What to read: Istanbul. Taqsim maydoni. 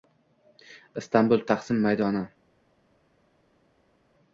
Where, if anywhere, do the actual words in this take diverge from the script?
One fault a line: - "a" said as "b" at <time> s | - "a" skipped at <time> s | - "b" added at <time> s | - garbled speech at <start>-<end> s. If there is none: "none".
none